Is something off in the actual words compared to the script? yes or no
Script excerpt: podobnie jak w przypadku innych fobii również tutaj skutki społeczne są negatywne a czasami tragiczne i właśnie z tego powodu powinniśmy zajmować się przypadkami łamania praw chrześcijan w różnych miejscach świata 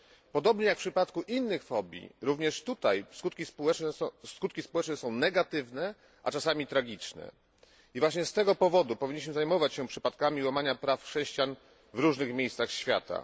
no